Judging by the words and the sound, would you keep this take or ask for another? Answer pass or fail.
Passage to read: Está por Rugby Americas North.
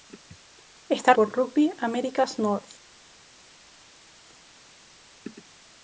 pass